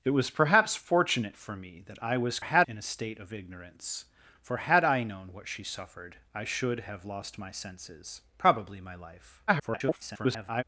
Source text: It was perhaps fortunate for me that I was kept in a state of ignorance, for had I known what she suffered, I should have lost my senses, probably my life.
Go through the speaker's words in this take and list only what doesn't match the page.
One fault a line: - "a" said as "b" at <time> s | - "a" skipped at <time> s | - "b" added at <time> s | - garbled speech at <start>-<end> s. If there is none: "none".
- "kept" said as "had" at 2.4 s
- garbled speech at 9.5-10.6 s